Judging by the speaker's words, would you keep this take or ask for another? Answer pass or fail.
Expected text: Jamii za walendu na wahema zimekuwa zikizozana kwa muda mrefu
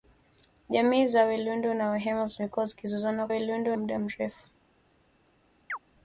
fail